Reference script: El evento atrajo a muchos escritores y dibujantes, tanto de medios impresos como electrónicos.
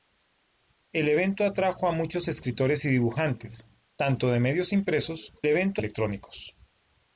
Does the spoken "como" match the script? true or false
false